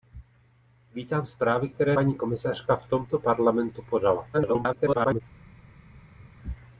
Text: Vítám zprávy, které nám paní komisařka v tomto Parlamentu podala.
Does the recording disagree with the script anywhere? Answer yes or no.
yes